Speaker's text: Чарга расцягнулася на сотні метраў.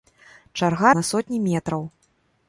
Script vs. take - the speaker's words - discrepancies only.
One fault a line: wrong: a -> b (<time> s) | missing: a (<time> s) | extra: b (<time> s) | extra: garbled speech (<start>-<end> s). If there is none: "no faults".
missing: расцягнулася (0.9 s)